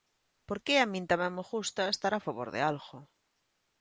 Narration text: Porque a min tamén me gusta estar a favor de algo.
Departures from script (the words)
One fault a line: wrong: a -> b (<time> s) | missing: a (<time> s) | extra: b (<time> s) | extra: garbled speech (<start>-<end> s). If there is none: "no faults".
no faults